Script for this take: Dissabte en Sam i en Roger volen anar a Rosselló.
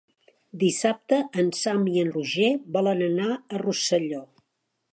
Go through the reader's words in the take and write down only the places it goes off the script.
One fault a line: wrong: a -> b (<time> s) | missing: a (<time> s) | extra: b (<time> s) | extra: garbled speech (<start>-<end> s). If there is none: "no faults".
no faults